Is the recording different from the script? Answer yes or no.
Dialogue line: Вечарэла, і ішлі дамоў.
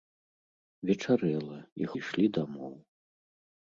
no